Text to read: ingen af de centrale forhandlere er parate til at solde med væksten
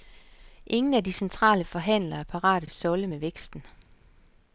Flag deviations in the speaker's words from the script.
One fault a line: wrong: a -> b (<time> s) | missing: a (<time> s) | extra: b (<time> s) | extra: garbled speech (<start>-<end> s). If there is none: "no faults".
missing: til (2.6 s)